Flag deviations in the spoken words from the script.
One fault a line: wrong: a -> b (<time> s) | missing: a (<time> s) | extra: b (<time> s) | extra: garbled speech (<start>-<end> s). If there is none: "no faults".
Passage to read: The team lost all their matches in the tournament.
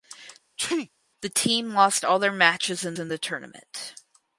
extra: in (3.0 s)